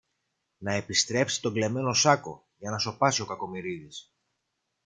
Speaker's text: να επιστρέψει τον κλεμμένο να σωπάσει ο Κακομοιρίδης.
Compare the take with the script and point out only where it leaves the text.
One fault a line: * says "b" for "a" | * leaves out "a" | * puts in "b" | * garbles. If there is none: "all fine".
* puts in "σάκο για"